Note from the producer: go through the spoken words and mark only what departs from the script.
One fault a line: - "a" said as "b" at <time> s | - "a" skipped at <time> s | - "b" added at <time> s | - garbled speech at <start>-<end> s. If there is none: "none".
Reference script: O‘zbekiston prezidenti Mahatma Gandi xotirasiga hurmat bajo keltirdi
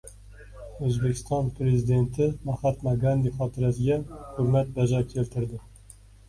none